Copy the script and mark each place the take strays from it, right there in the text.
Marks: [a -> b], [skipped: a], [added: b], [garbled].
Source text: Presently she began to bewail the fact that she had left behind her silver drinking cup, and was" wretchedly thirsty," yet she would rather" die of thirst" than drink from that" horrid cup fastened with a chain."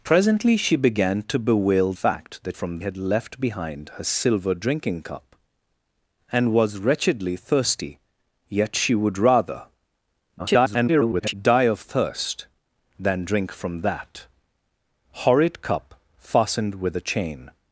Presently she began to bewail [skipped: the] fact that [she -> from] had left behind her silver drinking cup, and was" wretchedly thirsty," yet she would rather" [garbled] die of thirst" than drink from that" horrid cup fastened with a chain."